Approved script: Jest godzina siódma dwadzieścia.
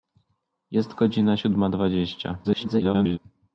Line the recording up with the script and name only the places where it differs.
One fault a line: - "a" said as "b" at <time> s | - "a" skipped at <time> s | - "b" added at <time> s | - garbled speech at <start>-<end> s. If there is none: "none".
- garbled speech at 2.4-3.2 s